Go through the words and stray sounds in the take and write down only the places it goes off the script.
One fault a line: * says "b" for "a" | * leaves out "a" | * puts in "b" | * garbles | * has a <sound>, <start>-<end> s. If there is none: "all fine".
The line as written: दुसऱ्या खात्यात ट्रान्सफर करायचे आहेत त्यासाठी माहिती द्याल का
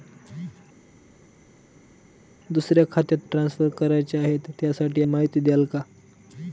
all fine